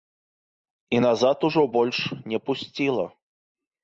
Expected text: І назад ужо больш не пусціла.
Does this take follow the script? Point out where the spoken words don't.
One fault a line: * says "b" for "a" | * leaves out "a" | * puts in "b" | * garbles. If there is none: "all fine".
all fine